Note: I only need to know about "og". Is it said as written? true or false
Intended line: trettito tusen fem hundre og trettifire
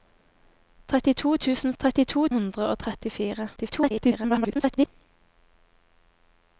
true